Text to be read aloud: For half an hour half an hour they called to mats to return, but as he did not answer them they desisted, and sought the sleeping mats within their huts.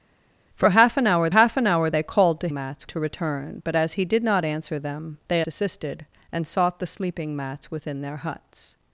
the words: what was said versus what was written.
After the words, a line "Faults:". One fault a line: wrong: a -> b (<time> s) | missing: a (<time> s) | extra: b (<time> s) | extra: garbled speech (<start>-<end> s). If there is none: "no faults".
For half an hour half an hour they called to mats to return, but as he did not answer them they desisted, and sought the sleeping mats within their huts.
Faults:
no faults